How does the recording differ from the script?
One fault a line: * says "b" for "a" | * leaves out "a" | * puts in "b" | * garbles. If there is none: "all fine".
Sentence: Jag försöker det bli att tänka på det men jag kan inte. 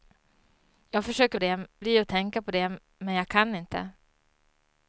all fine